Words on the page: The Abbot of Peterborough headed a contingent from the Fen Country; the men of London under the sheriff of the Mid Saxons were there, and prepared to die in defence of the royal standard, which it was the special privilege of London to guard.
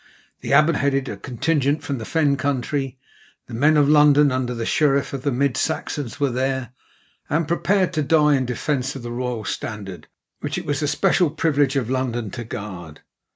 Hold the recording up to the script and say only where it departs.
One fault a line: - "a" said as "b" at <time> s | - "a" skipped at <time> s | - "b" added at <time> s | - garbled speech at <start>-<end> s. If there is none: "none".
- "of Peterborough" skipped at 0.8 s